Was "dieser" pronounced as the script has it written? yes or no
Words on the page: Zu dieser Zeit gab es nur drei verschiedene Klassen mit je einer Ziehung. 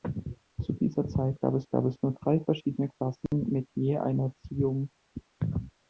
yes